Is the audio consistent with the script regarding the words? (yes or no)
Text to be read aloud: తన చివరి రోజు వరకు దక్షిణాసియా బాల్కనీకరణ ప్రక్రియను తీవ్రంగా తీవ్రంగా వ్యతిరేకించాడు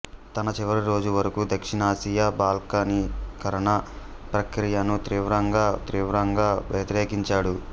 yes